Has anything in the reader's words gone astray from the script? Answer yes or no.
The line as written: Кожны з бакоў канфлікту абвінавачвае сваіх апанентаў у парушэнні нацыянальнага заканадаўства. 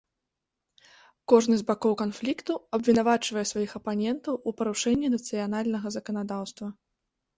no